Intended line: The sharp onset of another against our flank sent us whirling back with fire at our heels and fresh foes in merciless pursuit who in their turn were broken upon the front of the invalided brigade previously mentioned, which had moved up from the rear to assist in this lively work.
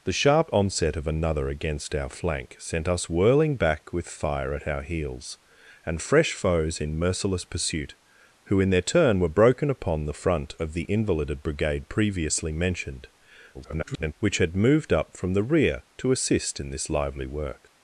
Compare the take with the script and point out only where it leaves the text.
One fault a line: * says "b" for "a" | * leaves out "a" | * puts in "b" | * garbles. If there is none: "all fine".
* garbles